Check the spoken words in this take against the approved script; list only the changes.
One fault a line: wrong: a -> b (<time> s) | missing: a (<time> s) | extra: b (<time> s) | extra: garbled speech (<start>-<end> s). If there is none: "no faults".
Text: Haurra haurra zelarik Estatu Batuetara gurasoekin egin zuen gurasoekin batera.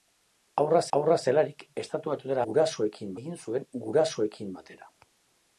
no faults